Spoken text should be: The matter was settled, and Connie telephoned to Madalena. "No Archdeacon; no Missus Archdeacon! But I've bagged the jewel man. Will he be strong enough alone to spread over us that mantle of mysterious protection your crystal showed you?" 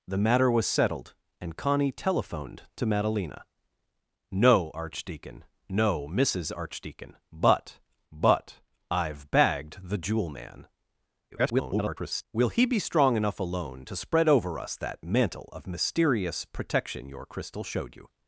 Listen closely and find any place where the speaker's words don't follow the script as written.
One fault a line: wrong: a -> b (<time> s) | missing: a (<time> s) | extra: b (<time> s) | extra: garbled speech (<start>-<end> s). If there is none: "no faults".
extra: but (8.1 s)
extra: garbled speech (11.3-12.2 s)